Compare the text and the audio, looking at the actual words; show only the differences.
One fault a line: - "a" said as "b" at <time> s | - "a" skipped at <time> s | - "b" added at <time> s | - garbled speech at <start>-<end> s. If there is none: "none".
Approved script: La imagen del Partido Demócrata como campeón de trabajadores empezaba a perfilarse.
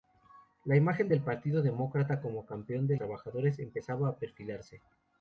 none